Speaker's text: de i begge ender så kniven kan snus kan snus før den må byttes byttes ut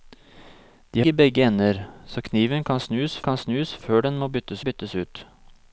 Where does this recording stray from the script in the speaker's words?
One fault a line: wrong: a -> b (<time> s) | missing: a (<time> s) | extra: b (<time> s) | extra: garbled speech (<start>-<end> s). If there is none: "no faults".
no faults